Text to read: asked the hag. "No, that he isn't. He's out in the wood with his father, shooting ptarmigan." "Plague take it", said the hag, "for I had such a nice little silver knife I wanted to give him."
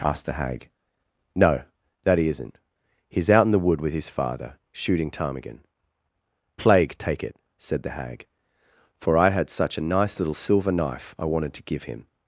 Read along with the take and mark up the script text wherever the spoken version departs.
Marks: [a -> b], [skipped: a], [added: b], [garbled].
asked the hag. "No, that he isn't. He's out in the wood with his father, shooting ptarmigan." "Plague take it", said the hag, "for I had such a nice little silver knife I wanted to give him."